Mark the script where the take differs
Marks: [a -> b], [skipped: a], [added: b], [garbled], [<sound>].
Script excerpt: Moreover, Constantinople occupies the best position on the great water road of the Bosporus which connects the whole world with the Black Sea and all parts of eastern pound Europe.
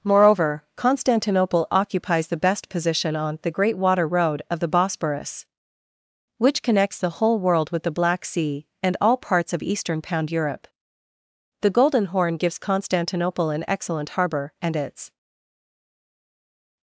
Moreover, Constantinople occupies the best position on the great water road of the Bosporus which connects the whole world with the Black Sea and all parts of eastern pound Europe. [added: The Golden Horn gives Constantinople an excellent harbor and its]